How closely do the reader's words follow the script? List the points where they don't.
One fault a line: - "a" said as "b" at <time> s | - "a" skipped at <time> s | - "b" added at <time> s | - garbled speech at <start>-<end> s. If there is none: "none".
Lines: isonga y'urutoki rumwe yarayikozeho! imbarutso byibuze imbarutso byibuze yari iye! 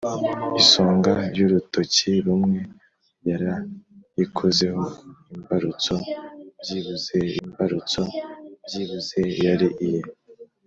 none